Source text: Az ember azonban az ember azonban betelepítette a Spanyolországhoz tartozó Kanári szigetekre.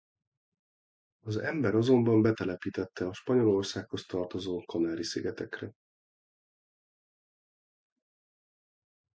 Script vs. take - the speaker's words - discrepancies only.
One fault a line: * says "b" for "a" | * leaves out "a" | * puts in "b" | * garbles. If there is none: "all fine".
* leaves out "az ember azonban"